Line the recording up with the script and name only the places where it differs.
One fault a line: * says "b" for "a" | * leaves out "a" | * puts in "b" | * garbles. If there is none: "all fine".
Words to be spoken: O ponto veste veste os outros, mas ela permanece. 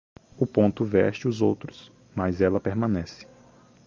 * leaves out "veste"